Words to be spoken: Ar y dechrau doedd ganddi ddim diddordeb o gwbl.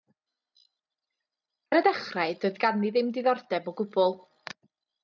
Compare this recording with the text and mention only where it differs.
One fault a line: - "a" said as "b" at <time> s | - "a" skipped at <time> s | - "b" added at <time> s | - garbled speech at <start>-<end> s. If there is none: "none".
none